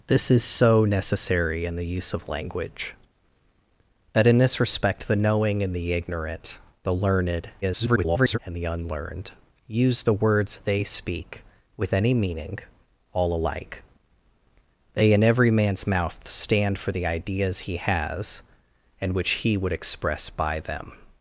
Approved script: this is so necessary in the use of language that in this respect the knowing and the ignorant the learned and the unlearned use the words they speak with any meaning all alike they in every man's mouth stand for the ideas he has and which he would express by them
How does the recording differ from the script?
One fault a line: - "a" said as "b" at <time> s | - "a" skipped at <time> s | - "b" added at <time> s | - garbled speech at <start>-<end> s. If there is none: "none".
- garbled speech at 7.6-8.4 s